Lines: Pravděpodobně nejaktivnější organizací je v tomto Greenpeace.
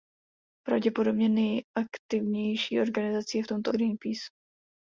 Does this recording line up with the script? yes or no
yes